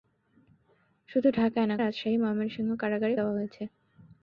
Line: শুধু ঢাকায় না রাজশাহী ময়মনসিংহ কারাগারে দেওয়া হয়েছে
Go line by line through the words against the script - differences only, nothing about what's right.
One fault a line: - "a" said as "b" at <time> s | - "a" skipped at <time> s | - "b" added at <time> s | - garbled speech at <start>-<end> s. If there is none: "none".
none